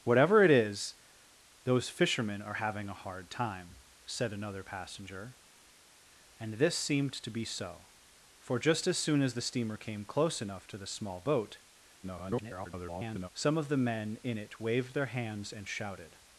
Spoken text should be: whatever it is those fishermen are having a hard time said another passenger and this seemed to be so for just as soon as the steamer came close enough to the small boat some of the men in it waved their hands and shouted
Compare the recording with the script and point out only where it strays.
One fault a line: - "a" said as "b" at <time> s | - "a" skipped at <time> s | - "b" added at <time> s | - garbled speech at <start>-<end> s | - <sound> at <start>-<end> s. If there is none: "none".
- garbled speech at 12.0-13.3 s